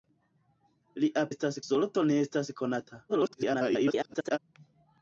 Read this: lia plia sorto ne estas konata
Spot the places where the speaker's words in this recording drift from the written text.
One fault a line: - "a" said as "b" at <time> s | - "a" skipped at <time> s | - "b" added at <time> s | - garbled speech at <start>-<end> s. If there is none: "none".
- "plia" said as "estas" at 1.3 s
- garbled speech at 3.1-4.4 s